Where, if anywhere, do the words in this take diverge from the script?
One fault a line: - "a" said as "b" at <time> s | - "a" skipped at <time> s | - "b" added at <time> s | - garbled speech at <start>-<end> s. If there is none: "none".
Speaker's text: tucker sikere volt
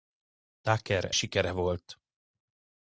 none